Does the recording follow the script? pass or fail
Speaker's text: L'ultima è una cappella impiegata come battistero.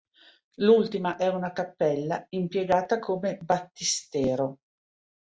pass